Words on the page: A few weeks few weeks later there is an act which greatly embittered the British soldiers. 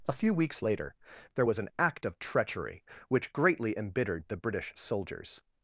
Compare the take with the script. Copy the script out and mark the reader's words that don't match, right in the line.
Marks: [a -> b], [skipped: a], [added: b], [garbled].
A few weeks [skipped: few weeks] later there [is -> was] an act [added: of treachery] which greatly embittered the British soldiers.